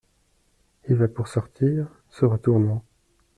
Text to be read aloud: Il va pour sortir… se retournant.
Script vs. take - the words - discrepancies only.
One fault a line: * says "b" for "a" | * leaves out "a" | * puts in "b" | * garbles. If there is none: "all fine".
all fine